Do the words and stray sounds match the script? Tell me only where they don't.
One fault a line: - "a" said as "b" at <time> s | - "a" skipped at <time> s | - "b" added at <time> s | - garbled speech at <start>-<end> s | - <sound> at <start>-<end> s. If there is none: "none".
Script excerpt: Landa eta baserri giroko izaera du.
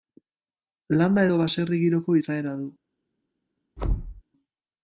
- "eta" said as "edo" at 1.3 s
- thud at 3.8-4.2 s